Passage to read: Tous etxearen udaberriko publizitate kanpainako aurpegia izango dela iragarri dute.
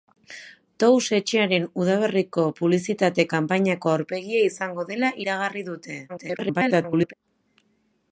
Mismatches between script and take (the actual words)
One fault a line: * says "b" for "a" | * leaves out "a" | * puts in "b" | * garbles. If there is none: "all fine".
* garbles